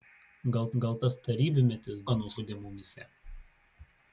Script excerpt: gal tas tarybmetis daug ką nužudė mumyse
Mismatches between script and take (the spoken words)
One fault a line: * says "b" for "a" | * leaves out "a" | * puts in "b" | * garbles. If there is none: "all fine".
* puts in "gal"
* leaves out "daug"